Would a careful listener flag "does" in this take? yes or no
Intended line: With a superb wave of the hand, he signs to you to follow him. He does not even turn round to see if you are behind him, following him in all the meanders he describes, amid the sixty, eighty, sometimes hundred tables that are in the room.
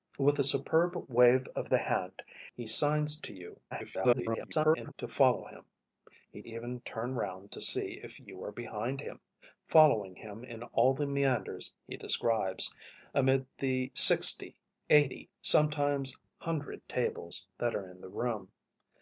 yes